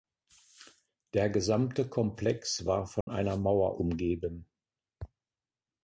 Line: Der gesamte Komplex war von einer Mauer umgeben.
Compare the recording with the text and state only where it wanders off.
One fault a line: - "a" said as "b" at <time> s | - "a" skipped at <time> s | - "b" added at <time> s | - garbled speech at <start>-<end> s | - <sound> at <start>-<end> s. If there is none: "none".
- dropout at 3.0-3.1 s